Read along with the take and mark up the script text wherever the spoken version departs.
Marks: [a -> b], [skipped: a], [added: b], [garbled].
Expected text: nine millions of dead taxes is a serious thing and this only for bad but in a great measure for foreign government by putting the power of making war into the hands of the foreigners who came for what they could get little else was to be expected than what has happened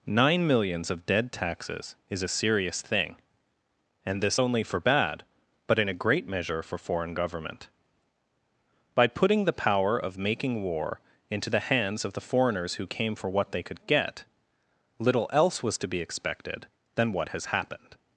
nine millions of dead taxes is a serious thing and this only for bad but in a great measure for foreign government by putting the power of making war into the hands of the foreigners who came for what they could get little else was to be expected than what has happened